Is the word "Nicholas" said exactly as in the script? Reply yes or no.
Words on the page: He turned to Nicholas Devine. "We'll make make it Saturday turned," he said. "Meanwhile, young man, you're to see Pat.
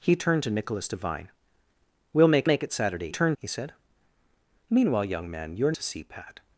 yes